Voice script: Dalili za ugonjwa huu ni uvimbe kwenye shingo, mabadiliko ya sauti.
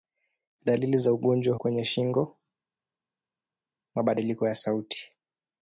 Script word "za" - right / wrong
right